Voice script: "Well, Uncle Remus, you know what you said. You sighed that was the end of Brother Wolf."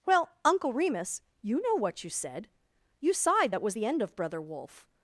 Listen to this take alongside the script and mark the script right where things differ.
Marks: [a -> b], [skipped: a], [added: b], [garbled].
"Well, Uncle Remus, you know what you said. You sighed that was the end of Brother Wolf."